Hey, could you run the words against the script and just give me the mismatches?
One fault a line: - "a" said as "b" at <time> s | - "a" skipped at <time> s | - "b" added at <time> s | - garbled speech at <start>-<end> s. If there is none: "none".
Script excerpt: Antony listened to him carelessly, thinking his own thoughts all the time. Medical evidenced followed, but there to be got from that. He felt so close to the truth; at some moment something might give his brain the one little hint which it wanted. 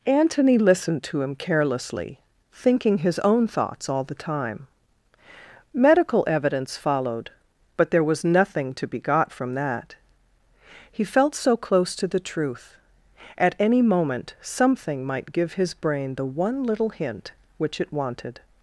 - "evidenced" said as "evidence" at 6.2 s
- "was nothing" added at 8.0 s
- "some" said as "any" at 13.6 s